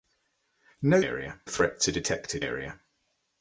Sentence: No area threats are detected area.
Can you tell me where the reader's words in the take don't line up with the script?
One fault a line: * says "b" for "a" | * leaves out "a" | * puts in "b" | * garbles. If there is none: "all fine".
all fine